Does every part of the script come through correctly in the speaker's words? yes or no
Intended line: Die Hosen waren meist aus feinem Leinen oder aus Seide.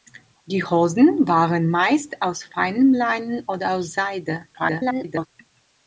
no